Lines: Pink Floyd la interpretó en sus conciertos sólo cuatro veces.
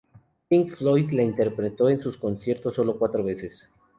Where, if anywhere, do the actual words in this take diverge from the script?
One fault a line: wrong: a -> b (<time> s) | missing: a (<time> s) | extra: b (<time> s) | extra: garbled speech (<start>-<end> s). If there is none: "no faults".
no faults